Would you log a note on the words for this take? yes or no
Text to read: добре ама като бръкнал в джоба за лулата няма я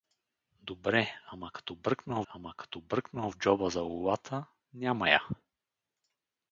yes